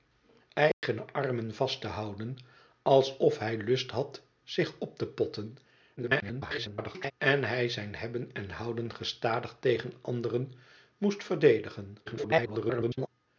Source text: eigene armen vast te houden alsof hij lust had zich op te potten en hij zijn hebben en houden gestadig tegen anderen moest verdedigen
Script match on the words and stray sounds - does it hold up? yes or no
no